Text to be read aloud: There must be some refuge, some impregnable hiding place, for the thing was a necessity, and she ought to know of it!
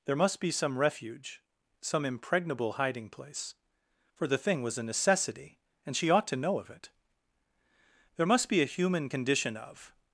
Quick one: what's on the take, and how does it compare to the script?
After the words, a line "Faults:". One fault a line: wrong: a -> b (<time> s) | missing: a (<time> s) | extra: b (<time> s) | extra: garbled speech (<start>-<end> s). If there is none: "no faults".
There must be some refuge, some impregnable hiding place, for the thing was a necessity, and she ought to know of it! There must be a human condition of
Faults:
extra: There must be a human condition of (8.2 s)